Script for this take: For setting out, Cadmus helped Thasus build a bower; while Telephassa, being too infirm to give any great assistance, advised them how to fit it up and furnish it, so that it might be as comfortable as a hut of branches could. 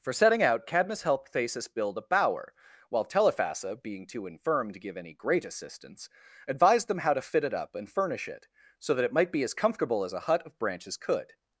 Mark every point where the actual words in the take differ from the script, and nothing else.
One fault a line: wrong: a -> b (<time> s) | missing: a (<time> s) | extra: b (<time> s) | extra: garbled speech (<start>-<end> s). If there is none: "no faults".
no faults